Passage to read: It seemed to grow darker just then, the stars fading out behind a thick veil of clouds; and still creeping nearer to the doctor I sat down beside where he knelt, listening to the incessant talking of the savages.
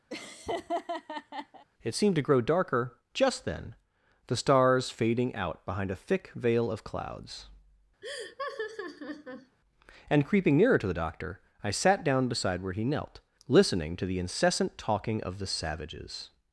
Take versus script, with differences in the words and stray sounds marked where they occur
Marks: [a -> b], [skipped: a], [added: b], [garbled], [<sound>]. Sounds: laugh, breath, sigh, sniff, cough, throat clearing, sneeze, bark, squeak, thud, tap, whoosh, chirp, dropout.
[laugh] It seemed to grow darker just then, the stars fading out behind a thick veil of clouds; [laugh] and [skipped: still] creeping nearer to the doctor I sat down beside where he knelt, listening to the incessant talking of the savages.